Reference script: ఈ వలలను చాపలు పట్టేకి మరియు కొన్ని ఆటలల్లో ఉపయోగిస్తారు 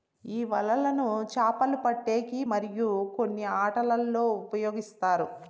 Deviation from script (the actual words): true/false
false